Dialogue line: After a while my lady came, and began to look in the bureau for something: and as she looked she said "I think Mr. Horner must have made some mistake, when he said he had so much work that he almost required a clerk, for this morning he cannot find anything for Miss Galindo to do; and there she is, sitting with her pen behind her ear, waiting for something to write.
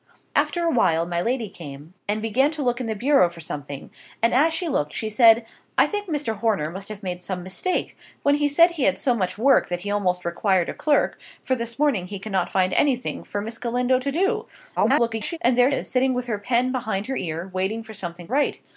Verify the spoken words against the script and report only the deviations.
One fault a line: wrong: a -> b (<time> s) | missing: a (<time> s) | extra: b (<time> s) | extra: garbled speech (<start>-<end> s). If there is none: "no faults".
extra: garbled speech (14.8-15.4 s)
missing: she (15.7 s)
missing: to (18.3 s)